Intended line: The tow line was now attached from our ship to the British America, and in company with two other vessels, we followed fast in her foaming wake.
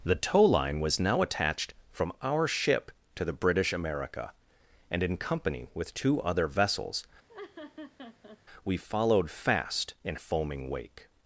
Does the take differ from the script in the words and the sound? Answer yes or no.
yes